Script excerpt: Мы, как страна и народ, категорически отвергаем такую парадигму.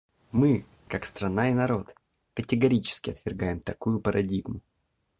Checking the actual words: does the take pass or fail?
pass